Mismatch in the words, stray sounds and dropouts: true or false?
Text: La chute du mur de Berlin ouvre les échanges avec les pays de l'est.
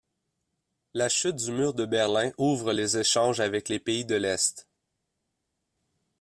false